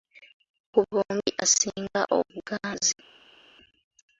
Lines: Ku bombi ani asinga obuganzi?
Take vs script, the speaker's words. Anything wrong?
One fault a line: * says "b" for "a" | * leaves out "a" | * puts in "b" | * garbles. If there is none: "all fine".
* leaves out "ani"